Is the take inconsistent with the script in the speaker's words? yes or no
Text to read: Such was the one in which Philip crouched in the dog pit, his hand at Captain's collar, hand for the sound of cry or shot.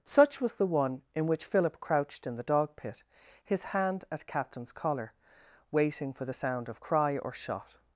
yes